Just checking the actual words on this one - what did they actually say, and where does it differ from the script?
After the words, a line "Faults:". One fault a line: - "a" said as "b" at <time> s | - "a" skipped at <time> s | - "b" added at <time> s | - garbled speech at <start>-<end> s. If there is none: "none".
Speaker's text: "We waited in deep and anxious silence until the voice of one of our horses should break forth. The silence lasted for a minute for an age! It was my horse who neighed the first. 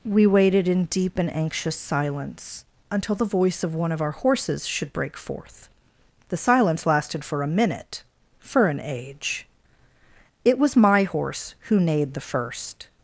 "We waited in deep and anxious silence until the voice of one of our horses should break forth. The silence lasted for a minute for an age! It was my horse who neighed the first.
Faults:
none